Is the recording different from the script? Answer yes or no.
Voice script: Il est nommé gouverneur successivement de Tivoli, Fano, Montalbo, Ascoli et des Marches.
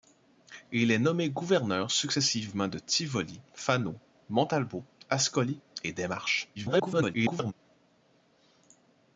yes